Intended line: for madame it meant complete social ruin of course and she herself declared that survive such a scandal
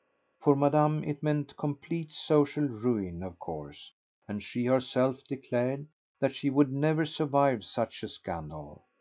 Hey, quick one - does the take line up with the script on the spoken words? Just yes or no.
no